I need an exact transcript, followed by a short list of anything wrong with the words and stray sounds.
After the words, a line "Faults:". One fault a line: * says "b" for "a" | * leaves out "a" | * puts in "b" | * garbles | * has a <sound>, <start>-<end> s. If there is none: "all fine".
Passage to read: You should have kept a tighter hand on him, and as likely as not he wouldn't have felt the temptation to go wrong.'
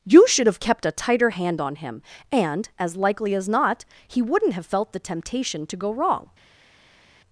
You should have kept a tighter hand on him, and as likely as not he wouldn't have felt the temptation to go wrong.'
Faults:
all fine